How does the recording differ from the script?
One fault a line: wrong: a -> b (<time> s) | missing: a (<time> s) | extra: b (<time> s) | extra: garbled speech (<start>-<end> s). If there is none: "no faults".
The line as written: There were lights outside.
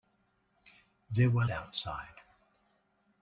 missing: lights (1.4 s)